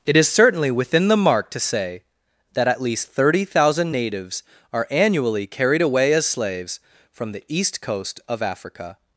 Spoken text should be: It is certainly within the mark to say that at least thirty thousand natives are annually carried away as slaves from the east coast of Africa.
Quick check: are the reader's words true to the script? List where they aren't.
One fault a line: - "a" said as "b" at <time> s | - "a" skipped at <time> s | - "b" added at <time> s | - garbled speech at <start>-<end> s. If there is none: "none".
none